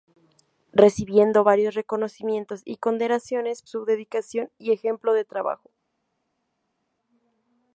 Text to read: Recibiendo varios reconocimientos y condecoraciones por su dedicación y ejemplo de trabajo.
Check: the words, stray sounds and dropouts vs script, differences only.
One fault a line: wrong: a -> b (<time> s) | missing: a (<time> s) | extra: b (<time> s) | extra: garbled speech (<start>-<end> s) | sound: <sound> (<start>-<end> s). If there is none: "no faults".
missing: por (3.6 s)